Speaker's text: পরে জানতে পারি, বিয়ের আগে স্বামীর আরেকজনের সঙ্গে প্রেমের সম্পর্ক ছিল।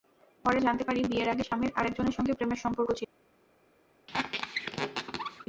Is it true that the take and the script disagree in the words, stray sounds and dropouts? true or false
true